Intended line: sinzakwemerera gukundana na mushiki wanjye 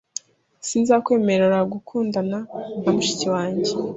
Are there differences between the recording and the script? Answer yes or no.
no